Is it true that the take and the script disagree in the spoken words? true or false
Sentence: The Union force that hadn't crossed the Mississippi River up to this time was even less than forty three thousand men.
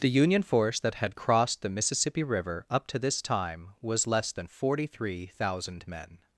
true